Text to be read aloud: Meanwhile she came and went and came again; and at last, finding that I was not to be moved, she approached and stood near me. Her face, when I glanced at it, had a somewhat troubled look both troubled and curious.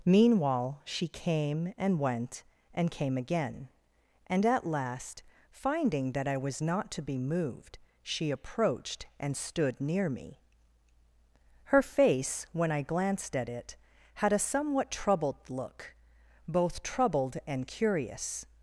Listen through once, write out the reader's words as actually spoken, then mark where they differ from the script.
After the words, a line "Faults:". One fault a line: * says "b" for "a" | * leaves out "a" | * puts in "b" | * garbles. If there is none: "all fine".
Meanwhile she came and went and came again; and at last, finding that I was not to be moved, she approached and stood near me. Her face, when I glanced at it, had a somewhat troubled look both troubled and curious.
Faults:
all fine